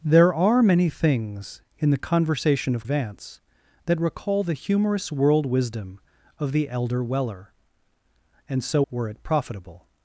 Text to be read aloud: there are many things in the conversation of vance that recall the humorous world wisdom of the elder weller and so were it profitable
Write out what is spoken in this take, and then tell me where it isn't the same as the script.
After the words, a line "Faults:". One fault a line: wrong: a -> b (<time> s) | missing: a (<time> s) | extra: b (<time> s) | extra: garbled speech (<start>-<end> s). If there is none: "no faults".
there are many things in the conversation of vance that recall the humorous world wisdom of the elder weller and so were it profitable
Faults:
no faults